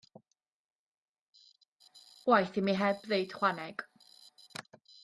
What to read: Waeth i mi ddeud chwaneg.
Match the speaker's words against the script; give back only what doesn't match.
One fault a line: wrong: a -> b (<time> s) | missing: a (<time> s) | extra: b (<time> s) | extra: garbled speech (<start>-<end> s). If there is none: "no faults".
extra: heb (2.8 s)